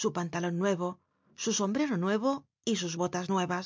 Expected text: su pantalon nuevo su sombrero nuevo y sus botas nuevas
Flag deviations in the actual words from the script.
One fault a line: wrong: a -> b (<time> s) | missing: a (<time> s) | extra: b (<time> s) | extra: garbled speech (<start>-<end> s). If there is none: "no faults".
no faults